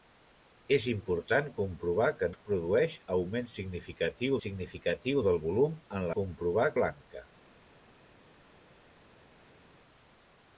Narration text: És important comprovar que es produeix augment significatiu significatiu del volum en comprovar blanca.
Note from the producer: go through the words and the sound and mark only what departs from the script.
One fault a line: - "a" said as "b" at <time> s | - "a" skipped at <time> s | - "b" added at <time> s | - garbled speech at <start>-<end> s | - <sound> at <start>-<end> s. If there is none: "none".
none